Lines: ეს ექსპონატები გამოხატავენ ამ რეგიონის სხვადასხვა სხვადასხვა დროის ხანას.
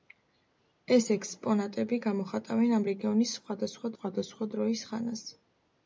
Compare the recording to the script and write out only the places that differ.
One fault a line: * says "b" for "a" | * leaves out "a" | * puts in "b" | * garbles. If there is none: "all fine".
all fine